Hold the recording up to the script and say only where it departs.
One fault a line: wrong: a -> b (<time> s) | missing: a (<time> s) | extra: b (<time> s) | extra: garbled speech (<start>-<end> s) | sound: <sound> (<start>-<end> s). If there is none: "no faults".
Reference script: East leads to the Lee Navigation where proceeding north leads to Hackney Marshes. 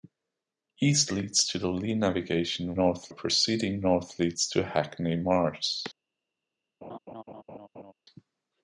wrong: where -> north (2.7 s)
sound: laugh (6.8-7.9 s)